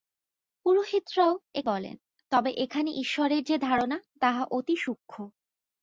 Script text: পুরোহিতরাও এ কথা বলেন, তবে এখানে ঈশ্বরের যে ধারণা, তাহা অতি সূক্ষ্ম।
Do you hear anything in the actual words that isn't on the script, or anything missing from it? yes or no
yes